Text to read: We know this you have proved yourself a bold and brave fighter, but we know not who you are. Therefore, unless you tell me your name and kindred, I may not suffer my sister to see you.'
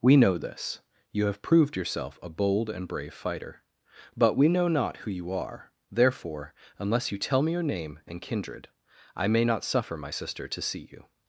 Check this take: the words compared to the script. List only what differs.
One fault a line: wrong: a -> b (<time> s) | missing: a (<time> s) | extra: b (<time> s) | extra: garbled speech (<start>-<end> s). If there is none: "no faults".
no faults